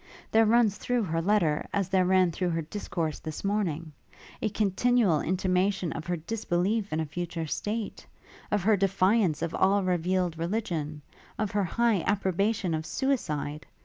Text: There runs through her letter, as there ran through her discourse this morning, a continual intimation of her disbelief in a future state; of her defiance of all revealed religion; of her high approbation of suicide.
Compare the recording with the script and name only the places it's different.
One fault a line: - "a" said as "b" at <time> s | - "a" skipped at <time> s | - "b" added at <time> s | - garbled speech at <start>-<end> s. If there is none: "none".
none